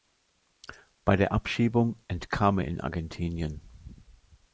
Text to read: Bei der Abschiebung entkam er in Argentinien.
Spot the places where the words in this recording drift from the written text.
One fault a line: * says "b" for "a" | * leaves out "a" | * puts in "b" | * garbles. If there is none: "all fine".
all fine